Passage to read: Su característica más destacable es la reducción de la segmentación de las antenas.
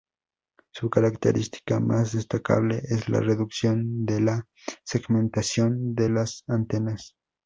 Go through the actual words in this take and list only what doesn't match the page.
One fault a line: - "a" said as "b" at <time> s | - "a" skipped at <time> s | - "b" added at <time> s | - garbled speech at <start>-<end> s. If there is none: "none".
none